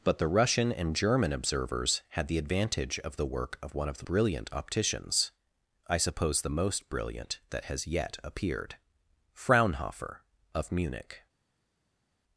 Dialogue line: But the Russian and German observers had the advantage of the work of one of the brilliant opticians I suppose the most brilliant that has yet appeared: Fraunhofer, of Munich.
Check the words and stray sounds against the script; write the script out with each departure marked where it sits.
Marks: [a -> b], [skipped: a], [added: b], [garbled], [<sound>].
But the Russian and German observers had the advantage of the work of one of the brilliant opticians I suppose the most brilliant that has yet appeared: Fraunhofer, of Munich.